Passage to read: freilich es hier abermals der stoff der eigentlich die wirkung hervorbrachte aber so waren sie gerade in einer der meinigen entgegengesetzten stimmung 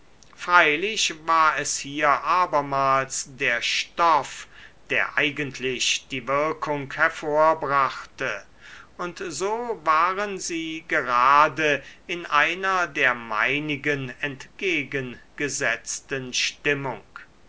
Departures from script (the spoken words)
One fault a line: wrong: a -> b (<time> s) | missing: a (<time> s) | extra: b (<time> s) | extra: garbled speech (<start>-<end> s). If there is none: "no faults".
extra: war (1.3 s)
wrong: aber -> und (9.0 s)